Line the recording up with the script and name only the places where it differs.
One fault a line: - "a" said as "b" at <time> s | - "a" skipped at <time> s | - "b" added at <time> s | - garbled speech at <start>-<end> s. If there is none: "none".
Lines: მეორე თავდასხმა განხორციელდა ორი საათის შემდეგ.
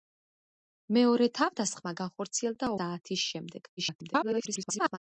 - "ორი" skipped at 2.7 s
- garbled speech at 3.8-5.0 s